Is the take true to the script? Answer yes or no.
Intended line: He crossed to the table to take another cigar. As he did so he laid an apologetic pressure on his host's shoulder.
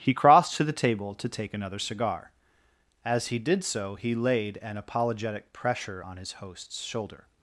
yes